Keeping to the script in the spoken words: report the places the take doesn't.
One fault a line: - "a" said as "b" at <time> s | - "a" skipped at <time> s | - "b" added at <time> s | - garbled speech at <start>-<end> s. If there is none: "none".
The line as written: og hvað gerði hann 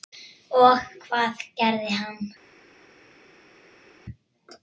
none